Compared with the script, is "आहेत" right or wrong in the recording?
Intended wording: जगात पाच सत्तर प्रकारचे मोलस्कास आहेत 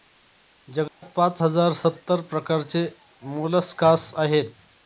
right